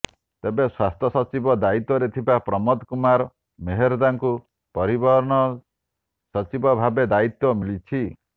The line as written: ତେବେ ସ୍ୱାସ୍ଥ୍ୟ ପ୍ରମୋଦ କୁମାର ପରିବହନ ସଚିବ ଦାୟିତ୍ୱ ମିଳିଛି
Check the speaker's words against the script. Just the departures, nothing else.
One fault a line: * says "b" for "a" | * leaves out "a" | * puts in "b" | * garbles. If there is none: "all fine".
* puts in "ସଚିବ ଦାୟିତ୍ୱରେ ଥିବା"
* puts in "ମେହେର୍ଦ୍ଦାଙ୍କୁ"
* puts in "ଭାବେ"